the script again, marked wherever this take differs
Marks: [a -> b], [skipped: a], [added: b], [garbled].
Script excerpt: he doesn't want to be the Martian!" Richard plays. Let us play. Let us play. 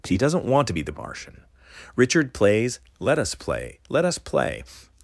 he doesn't want to be the Martian!" Richard plays. Let us play. Let us play.